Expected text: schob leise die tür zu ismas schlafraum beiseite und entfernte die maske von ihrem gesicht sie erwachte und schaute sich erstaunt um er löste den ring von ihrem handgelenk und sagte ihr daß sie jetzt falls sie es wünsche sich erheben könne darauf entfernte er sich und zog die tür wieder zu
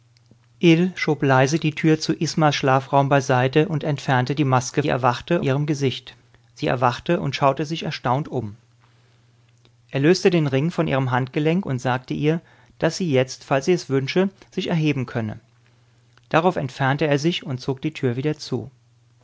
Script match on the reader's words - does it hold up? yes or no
no